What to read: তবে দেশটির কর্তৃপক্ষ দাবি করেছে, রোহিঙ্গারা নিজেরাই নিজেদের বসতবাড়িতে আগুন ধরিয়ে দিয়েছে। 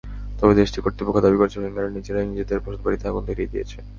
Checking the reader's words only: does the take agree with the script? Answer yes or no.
yes